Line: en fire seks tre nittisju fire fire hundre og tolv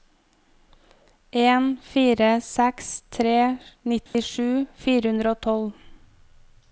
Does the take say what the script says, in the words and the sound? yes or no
no